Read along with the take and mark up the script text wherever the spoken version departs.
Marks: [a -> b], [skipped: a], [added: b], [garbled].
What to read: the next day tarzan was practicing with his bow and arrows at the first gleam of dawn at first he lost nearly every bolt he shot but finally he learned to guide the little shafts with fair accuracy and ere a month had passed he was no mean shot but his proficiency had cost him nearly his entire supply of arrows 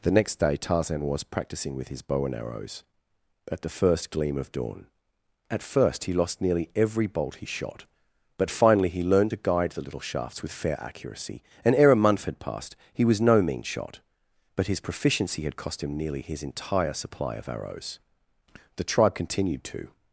the next day tarzan was practicing with his bow and arrows at the first gleam of dawn at first he lost nearly every bolt he shot but finally he learned to guide the little shafts with fair accuracy and ere a month had passed he was no mean shot but his proficiency had cost him nearly his entire supply of arrows [added: the tribe continued to]